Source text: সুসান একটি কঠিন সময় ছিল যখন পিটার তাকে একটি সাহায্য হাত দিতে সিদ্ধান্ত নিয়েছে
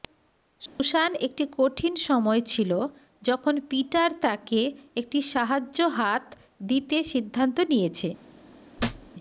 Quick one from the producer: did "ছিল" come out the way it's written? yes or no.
yes